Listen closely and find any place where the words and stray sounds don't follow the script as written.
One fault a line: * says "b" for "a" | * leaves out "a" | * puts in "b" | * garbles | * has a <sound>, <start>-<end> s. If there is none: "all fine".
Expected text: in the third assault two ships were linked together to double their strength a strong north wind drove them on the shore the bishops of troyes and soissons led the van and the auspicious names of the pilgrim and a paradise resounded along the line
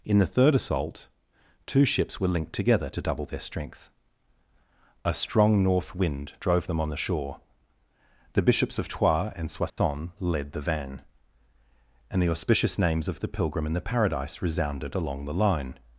* has a dropout, 9.7-9.8 s
* says "the" for "a"